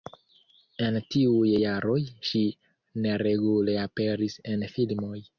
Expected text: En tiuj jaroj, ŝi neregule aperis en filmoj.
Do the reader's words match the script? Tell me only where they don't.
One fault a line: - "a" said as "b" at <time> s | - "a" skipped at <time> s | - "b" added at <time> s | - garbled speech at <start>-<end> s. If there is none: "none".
none